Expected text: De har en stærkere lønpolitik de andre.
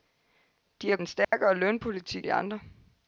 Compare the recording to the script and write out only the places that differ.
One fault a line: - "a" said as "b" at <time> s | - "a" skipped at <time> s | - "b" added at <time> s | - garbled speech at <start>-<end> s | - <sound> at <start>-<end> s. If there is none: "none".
- dropout at 1.2-1.3 s